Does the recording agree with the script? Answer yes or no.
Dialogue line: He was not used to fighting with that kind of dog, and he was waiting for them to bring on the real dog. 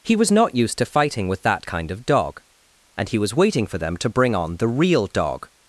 yes